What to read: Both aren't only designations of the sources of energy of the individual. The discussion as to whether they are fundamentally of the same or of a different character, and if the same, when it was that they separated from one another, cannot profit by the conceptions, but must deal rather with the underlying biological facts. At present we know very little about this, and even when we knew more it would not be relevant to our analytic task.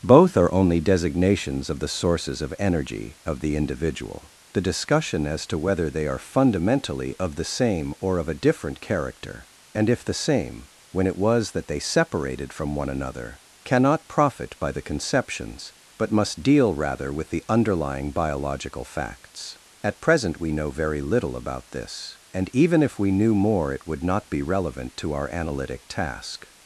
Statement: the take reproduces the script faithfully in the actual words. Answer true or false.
false